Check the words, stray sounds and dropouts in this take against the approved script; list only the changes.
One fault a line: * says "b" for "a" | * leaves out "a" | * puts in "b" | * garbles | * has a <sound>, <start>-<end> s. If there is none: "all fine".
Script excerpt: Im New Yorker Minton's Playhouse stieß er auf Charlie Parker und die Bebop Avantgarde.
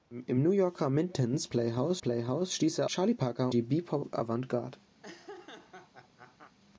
* puts in "Playhouse"
* leaves out "auf"
* leaves out "und"
* has a laugh, 5.0-6.6 s